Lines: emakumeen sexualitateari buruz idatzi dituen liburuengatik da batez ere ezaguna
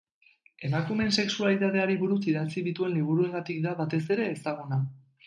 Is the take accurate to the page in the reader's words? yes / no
yes